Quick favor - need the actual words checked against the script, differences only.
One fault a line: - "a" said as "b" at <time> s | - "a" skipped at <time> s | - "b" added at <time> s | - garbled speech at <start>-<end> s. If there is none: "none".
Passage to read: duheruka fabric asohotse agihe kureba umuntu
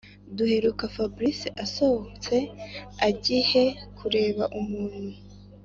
none